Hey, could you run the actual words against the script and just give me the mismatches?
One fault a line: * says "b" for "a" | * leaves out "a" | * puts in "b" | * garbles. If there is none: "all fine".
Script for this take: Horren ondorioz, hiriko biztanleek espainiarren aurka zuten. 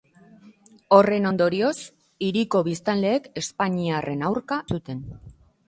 all fine